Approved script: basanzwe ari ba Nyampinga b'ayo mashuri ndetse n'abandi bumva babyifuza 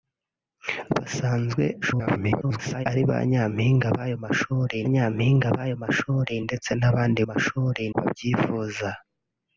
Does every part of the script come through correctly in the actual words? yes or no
no